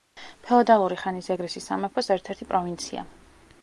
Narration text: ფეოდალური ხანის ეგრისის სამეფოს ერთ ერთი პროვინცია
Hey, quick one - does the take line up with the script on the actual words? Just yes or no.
yes